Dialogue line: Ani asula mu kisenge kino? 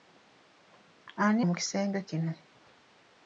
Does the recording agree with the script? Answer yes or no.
no